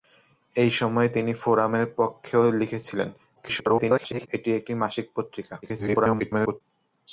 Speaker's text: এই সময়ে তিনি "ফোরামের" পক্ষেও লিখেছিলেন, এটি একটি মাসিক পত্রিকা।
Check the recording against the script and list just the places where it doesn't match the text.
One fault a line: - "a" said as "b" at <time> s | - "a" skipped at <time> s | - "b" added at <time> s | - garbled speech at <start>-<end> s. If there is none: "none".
- garbled speech at 3.4-4.3 s
- garbled speech at 5.6-6.6 s